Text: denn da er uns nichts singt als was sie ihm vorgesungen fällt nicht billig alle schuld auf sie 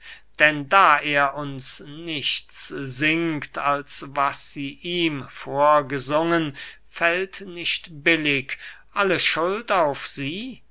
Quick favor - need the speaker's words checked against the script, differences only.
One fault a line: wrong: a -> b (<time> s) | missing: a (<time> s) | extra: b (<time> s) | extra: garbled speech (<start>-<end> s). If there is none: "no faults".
no faults